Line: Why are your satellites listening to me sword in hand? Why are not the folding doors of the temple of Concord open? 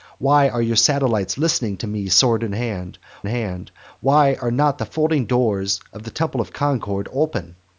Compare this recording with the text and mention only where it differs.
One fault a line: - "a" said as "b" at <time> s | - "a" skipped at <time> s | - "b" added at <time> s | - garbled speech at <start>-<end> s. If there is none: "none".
- "hand" added at 3.3 s